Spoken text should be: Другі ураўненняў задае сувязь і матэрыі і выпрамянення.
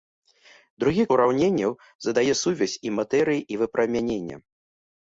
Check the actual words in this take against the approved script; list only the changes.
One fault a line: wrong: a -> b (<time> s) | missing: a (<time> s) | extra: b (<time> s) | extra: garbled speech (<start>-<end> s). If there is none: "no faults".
no faults